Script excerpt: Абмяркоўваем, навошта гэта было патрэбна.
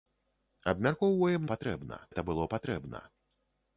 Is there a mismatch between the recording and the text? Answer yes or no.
yes